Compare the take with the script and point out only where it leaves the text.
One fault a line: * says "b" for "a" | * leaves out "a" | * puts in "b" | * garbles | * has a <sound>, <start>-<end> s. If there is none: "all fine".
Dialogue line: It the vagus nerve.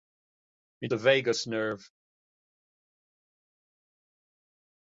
all fine